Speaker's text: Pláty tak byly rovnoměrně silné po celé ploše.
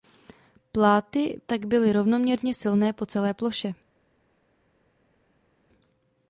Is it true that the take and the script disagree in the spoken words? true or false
false